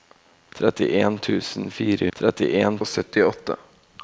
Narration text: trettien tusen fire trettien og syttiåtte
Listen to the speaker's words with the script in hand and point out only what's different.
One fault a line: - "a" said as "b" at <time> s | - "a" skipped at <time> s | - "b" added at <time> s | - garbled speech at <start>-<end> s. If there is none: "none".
none